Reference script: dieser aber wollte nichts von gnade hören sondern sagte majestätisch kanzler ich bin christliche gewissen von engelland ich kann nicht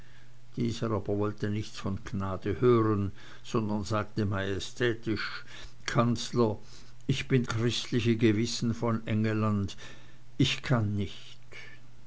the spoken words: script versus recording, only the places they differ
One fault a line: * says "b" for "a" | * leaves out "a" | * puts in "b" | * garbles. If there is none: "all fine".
all fine